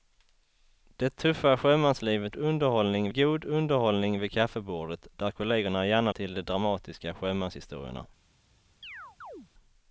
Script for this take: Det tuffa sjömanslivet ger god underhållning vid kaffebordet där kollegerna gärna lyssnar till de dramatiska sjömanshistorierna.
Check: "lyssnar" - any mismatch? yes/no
yes